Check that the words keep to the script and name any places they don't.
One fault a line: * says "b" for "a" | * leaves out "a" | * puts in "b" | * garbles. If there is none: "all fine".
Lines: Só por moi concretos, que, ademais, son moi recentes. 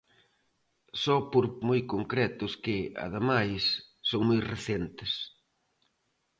all fine